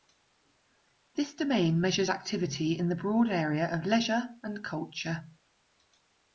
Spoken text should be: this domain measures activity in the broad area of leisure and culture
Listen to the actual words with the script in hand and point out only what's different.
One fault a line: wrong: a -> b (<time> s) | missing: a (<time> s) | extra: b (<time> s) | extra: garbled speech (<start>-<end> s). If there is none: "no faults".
no faults